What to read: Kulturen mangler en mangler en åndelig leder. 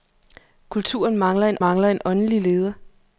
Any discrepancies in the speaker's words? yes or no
no